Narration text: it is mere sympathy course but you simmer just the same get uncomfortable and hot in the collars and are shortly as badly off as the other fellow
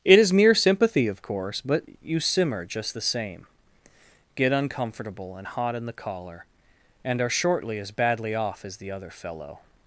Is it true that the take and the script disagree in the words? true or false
true